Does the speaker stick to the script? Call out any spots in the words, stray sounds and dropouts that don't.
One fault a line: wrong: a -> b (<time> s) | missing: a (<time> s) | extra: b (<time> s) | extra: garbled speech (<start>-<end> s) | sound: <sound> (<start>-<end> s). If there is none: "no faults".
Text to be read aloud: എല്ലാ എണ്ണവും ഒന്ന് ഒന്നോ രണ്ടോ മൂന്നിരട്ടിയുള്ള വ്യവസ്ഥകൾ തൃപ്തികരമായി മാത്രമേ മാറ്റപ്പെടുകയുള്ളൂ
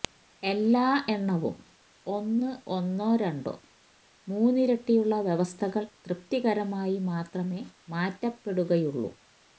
no faults